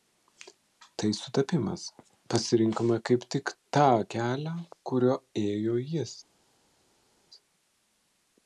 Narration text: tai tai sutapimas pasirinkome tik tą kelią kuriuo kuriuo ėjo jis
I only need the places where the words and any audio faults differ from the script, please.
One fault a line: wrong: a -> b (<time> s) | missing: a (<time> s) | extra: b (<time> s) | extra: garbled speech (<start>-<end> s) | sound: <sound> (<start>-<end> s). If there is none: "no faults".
missing: tai (1.1 s)
extra: kaip (3.1 s)
missing: kuriuo (5.2 s)